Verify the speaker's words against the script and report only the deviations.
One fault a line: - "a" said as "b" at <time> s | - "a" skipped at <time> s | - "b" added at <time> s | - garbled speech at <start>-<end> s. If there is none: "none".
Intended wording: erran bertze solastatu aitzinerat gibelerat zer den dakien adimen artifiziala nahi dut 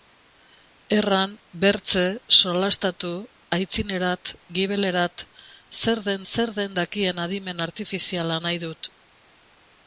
- "zer den" added at 6.3 s